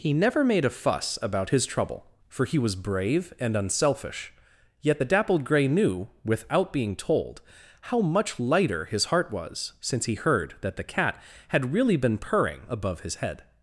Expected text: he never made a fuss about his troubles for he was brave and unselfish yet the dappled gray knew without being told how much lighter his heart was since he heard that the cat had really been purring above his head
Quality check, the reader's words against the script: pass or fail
fail